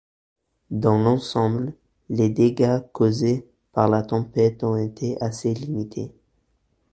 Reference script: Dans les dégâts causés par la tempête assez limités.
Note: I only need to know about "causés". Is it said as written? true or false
true